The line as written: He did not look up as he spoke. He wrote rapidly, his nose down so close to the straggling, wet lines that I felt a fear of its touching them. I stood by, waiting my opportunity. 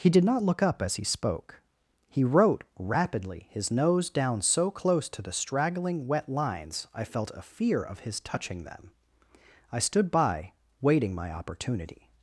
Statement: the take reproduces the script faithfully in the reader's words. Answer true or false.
false